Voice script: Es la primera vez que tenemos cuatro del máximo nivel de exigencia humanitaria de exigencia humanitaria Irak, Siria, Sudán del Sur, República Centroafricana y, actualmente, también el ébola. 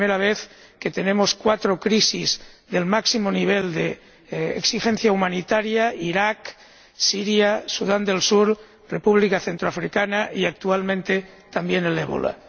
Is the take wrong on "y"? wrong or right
right